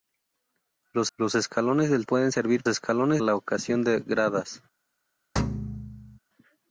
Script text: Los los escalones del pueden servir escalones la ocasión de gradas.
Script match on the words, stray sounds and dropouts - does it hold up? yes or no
no